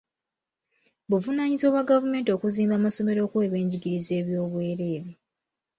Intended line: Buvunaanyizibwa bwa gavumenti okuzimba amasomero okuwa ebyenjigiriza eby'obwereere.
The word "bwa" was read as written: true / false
true